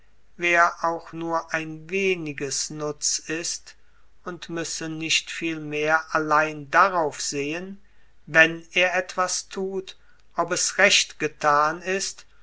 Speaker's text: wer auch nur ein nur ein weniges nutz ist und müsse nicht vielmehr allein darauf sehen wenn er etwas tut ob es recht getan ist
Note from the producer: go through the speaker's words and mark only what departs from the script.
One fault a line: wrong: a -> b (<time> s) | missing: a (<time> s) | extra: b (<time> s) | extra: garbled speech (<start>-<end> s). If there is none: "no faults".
missing: nur ein (1.9 s)